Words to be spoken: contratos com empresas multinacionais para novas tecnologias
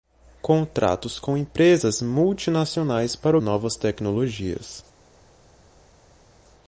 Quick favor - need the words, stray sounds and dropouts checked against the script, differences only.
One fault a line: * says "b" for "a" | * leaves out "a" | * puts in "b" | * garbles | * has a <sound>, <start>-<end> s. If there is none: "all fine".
all fine